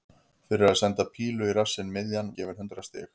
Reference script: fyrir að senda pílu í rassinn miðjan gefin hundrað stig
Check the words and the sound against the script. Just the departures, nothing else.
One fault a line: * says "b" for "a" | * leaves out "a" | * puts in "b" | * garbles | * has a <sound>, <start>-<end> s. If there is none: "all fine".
all fine